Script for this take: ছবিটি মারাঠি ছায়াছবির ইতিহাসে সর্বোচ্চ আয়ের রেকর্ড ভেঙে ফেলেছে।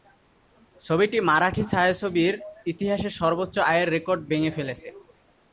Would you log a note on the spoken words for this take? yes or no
no